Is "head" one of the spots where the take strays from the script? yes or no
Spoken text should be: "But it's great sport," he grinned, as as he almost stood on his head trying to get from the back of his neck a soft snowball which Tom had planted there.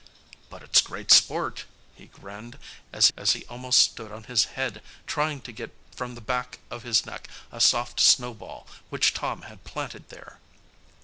no